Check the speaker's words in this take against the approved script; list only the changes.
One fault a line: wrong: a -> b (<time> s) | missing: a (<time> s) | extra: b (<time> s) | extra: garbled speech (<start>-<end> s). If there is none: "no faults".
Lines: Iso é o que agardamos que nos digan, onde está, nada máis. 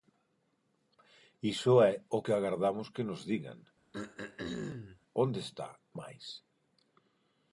missing: nada (5.7 s)